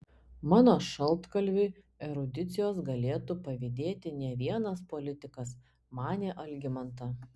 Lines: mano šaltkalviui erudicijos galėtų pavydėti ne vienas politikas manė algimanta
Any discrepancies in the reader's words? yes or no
no